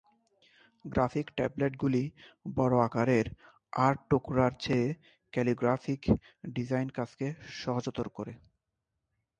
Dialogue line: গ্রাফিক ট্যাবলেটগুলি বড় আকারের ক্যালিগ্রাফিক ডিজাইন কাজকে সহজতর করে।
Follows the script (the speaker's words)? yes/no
no